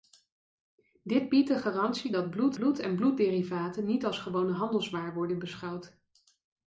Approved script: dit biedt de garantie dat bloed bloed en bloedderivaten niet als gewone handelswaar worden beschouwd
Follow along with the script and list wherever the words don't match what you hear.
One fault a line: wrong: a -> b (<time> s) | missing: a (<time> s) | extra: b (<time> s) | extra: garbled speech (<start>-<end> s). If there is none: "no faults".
no faults